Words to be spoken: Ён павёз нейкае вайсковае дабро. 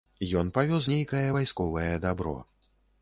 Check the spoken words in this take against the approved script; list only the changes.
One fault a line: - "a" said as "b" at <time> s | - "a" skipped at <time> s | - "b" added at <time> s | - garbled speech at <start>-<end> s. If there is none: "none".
none